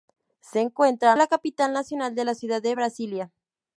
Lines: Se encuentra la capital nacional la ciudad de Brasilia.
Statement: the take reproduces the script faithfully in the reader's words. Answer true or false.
true